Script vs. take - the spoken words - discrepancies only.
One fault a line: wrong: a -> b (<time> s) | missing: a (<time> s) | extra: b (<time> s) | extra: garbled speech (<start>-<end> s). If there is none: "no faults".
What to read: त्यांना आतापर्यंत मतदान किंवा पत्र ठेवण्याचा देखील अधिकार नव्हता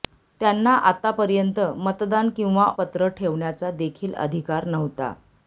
no faults